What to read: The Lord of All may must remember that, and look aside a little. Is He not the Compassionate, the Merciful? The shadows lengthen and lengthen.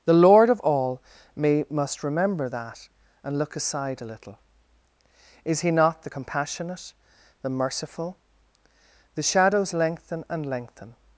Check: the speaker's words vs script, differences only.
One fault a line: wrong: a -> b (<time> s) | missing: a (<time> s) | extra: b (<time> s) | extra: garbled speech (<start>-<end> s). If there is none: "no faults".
no faults